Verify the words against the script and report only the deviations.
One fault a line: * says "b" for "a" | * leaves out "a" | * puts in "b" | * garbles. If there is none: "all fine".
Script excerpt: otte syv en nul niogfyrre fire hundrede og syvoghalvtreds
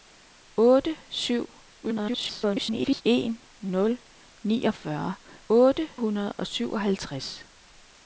* garbles
* says "otte" for "fire"